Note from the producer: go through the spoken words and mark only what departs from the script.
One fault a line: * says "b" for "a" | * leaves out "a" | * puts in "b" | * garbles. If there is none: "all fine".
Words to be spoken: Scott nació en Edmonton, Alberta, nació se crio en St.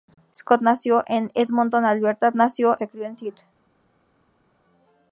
all fine